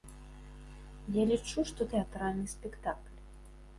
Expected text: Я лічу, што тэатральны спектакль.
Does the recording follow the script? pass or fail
pass